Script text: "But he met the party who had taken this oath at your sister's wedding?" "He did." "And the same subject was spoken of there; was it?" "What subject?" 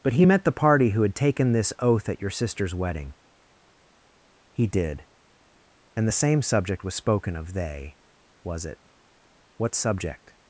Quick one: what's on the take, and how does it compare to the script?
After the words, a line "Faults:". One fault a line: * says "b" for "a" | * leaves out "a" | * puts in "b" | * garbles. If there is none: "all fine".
"But he met the party who had taken this oath at your sister's wedding?" "He did." "And the same subject was spoken of they; was it?" "What subject?"
Faults:
* says "they" for "there"